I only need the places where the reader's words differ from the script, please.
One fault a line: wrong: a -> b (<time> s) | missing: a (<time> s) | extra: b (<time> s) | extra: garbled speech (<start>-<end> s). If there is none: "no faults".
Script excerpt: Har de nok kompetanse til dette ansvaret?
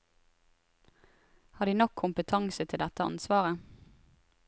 no faults